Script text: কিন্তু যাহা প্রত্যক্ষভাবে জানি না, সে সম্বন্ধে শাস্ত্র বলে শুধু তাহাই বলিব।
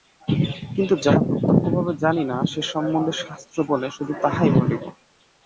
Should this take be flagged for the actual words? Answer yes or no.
no